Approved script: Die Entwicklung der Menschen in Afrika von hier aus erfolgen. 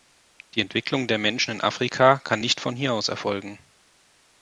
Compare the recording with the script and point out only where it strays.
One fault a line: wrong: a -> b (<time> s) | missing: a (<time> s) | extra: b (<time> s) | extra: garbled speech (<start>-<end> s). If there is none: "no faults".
extra: kann nicht (2.2 s)